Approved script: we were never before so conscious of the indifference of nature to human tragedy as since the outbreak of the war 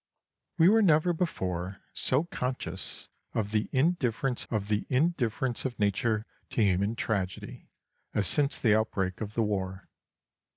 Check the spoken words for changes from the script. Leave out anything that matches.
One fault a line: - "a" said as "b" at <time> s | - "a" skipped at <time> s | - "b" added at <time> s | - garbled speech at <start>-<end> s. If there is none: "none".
- "the indifference of" added at 4.7 s